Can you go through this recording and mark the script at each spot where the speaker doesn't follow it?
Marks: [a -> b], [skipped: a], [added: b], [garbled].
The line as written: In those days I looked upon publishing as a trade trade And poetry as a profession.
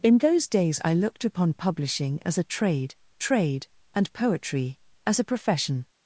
In those days I looked upon publishing as a trade trade And poetry as a profession.